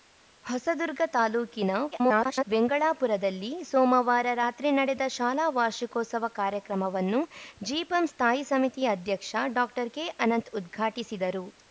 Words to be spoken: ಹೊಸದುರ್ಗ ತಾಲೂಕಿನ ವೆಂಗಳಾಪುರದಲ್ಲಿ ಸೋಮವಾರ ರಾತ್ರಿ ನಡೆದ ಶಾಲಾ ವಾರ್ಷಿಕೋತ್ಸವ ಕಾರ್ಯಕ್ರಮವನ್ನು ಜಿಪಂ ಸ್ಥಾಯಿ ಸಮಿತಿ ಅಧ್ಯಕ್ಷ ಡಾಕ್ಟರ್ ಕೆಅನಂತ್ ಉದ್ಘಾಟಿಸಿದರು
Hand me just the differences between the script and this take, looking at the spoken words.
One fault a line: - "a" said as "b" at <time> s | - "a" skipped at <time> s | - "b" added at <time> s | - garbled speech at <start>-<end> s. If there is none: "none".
- garbled speech at 1.9-2.5 s